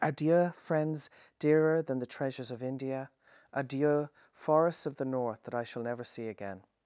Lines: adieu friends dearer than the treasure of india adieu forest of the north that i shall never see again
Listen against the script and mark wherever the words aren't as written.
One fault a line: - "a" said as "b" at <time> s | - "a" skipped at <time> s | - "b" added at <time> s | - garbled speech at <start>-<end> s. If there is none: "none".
- "treasure" said as "treasures" at 2.0 s
- "forest" said as "forests" at 4.3 s